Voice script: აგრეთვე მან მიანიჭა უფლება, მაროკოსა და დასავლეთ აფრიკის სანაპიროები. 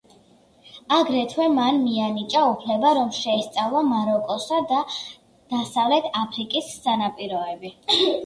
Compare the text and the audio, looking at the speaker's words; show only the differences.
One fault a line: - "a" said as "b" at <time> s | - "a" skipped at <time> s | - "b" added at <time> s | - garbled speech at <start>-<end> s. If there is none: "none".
- "რომ შეესწავლა" added at 3.0 s